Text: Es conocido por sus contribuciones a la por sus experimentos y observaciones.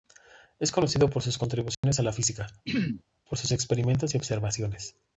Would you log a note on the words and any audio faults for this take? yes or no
yes